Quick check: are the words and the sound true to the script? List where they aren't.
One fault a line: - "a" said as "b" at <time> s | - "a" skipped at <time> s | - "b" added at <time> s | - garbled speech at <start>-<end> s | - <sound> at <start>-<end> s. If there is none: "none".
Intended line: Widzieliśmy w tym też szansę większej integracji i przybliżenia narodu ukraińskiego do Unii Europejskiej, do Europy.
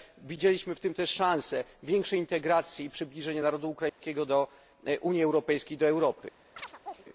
- dropout at 3.9-4.0 s
- chirp at 6.6-7.0 s